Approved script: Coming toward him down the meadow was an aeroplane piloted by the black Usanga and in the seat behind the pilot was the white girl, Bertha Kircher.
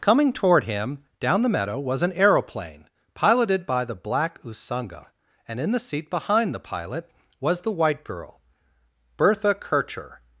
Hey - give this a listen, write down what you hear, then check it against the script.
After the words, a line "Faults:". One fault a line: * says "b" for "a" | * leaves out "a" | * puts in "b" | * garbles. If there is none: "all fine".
Coming toward him down the meadow was an aeroplane piloted by the black Usanga and in the seat behind the pilot was the white girl, Bertha Kircher.
Faults:
all fine